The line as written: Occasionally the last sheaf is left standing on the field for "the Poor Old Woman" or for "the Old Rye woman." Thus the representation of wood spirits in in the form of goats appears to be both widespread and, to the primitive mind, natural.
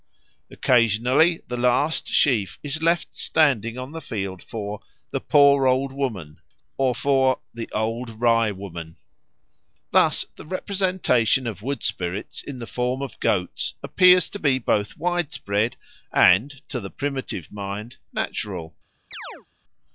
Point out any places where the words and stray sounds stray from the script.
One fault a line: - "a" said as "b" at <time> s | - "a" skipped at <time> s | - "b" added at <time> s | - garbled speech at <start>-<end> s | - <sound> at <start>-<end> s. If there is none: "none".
- "in" skipped at 12.6 s
- chirp at 19.1-19.5 s